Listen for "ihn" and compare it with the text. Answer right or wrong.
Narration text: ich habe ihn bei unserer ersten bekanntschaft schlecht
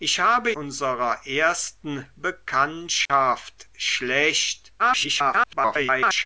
wrong